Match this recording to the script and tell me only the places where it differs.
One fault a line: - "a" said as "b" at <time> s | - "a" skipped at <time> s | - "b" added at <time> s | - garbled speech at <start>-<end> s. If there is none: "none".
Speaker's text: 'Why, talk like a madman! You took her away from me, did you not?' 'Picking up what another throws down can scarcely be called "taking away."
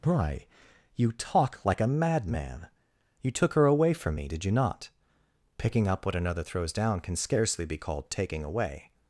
- "you" added at 0.9 s